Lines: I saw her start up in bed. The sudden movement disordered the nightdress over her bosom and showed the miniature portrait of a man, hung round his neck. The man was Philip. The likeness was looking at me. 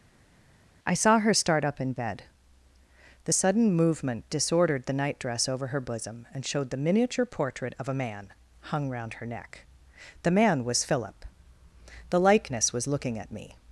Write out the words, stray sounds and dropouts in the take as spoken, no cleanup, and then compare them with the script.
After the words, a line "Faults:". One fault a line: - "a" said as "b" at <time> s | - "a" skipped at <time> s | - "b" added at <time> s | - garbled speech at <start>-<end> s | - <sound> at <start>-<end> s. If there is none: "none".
I saw her start up in bed. The sudden movement disordered the nightdress over her bosom and showed the miniature portrait of a man, hung round her neck. The man was Philip. The likeness was looking at me.
Faults:
- "his" said as "her" at 9.1 s